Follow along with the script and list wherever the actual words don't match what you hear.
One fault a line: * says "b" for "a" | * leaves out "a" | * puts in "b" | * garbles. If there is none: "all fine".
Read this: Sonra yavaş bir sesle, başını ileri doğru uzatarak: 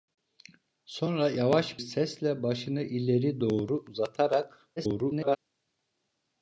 * leaves out "bir"
* garbles